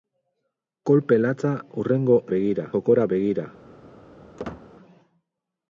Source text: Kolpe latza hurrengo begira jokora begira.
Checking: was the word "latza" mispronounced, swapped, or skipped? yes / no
no